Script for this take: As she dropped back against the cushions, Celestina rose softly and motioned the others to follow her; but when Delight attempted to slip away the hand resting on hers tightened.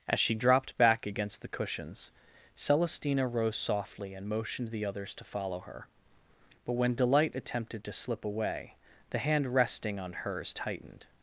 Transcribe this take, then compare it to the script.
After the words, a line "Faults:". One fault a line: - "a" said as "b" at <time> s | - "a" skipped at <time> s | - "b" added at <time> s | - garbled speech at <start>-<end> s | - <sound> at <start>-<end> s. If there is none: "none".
As she dropped back against the cushions, Celestina rose softly and motioned the others to follow her; but when Delight attempted to slip away the hand resting on hers tightened.
Faults:
none